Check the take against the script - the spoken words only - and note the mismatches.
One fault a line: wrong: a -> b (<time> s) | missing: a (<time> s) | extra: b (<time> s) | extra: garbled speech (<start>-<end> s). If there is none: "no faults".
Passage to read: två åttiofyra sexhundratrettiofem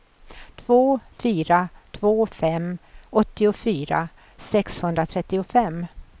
extra: fyra två fem (1.2 s)